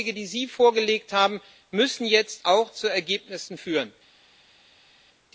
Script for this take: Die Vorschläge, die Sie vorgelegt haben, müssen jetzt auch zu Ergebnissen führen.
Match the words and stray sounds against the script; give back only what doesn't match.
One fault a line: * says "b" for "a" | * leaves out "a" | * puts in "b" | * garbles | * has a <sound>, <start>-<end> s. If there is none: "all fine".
all fine